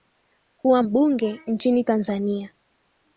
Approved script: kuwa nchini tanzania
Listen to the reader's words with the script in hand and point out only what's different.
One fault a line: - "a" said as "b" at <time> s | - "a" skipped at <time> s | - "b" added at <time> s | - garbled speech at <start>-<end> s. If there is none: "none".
- "mbunge" added at 0.8 s